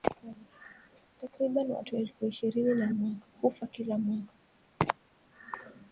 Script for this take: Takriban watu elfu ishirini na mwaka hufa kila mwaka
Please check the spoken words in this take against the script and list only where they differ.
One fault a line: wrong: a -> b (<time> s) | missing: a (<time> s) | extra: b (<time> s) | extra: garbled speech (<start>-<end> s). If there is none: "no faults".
no faults